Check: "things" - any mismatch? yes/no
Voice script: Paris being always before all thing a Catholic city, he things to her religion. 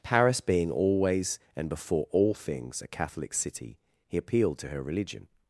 yes